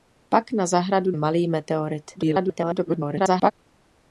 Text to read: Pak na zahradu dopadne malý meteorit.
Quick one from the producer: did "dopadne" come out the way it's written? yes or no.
no